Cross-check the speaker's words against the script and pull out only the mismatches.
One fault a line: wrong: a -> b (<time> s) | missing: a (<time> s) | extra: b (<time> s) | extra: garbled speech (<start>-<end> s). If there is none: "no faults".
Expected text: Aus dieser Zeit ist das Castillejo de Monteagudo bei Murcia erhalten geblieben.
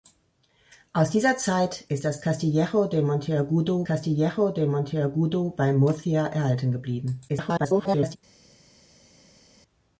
extra: Castillejo de Monteagudo (3.8 s)
extra: garbled speech (7.3-8.2 s)